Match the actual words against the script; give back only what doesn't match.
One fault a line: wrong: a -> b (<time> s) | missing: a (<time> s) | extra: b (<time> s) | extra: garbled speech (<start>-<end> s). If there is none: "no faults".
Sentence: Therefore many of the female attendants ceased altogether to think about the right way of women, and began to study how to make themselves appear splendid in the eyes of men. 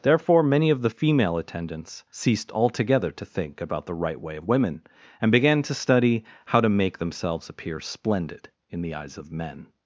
no faults